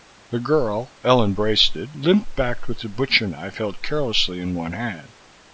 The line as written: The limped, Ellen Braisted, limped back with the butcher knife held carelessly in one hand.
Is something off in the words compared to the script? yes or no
yes